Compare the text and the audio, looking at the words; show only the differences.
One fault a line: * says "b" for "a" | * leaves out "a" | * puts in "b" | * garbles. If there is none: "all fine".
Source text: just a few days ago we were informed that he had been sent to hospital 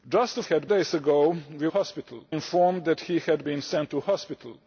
* says "had" for "few"
* says "hospital" for "were"